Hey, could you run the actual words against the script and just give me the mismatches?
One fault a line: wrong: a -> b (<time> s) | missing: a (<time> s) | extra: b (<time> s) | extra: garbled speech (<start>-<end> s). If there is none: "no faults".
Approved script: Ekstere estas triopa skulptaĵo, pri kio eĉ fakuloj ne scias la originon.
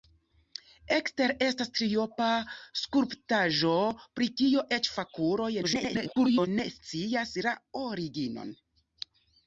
extra: garbled speech (5.6-6.5 s)